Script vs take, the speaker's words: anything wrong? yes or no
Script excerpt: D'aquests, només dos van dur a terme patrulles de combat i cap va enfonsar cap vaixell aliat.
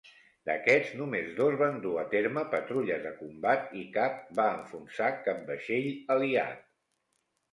no